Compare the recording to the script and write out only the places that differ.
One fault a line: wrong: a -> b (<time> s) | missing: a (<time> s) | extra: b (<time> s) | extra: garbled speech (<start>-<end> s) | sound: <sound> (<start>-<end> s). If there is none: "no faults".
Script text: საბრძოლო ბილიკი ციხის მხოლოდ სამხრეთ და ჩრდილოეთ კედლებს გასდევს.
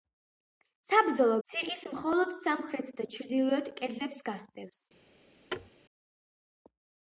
missing: ბილიკი (1.4 s)
sound: thud (5.5-5.7 s)